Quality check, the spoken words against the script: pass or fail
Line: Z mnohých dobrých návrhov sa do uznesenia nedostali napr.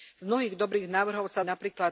fail